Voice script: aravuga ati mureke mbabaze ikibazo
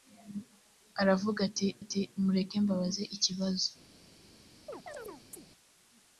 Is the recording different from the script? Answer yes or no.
yes